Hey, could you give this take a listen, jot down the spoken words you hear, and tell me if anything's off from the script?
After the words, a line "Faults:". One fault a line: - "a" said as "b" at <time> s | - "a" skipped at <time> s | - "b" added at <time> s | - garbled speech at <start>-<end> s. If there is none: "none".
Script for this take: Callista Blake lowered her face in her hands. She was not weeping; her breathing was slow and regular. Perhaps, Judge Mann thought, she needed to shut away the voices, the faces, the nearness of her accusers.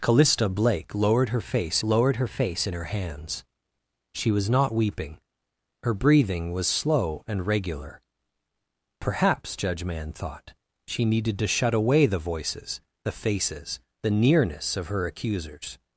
Callista Blake lowered her face lowered her face in her hands. She was not weeping; her breathing was slow and regular. Perhaps, Judge Mann thought, she needed to shut away the voices, the faces, the nearness of her accusers.
Faults:
- "lowered her face" added at 1.8 s